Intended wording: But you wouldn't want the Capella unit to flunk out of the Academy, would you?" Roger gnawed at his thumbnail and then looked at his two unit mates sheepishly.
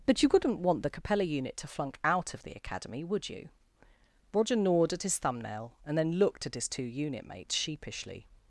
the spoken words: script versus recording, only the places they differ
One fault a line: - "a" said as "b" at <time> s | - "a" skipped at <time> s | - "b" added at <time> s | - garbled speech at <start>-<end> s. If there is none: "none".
none